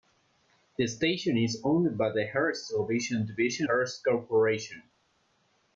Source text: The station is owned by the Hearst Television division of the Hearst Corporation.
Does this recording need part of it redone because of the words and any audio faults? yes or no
yes